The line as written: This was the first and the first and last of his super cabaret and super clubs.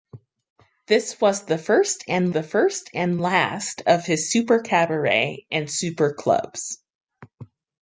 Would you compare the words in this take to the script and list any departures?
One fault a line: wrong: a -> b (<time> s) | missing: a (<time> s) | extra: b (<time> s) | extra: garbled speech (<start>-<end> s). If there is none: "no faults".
no faults